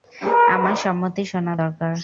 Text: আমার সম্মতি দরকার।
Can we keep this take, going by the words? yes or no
no